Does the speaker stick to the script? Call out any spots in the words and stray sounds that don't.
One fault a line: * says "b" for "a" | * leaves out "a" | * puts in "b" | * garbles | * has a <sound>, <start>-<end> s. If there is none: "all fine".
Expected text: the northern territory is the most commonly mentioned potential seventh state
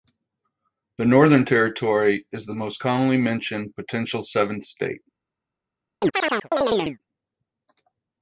* has a chirp, 6.0-7.0 s